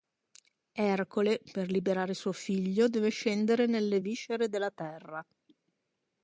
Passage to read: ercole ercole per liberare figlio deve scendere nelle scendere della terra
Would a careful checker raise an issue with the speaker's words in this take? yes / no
yes